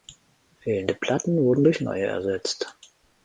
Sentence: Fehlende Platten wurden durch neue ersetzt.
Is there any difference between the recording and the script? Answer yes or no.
no